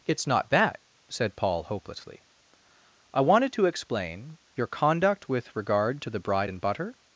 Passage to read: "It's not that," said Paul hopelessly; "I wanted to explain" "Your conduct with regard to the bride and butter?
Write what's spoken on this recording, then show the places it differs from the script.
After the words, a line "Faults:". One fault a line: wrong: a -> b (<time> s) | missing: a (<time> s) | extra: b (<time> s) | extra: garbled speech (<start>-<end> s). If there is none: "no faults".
"It's not that," said Paul hopelessly; "I wanted to explain" "Your conduct with regard to the bride and butter?
Faults:
no faults